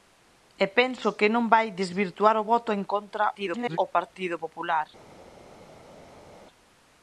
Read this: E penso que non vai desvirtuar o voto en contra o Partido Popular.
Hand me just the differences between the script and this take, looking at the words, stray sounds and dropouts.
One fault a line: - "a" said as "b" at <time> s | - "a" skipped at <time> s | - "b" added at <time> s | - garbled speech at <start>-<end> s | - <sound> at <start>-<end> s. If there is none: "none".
- garbled speech at 3.3-3.8 s